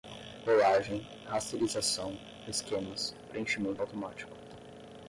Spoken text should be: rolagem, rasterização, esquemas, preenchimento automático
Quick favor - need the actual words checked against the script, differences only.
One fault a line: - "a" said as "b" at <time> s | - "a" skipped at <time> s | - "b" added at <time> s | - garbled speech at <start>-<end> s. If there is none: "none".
none